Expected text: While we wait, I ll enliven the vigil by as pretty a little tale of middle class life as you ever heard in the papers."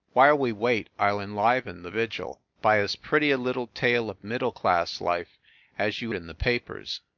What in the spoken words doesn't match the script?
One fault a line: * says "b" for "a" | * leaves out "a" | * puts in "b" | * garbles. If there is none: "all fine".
* leaves out "ever heard"